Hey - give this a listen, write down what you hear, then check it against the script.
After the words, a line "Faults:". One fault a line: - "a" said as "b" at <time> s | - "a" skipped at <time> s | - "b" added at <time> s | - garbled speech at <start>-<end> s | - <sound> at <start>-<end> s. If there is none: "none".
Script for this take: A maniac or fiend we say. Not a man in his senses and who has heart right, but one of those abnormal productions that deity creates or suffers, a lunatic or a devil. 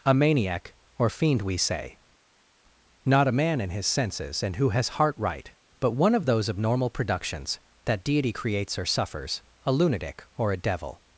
A maniac or fiend we say. Not a man in his senses and who has heart right, but one of those abnormal productions that deity creates or suffers, a lunatic or a devil.
Faults:
none